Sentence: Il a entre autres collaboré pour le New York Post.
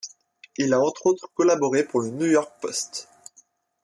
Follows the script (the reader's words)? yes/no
yes